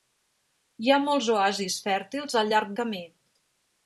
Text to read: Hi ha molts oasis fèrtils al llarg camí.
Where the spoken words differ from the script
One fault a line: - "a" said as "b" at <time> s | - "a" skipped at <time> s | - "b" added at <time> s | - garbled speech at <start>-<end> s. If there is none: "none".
none